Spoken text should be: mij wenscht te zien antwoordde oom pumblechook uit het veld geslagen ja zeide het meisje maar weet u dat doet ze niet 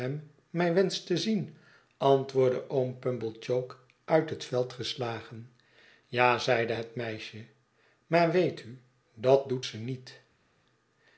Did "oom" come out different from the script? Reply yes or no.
no